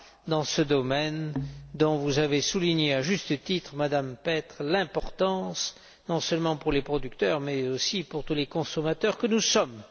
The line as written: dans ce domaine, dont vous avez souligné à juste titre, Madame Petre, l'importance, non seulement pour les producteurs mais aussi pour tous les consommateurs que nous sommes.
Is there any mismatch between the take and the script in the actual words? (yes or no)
no